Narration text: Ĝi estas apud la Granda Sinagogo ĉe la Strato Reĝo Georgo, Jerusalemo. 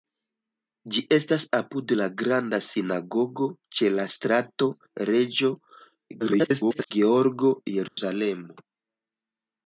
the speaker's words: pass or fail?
fail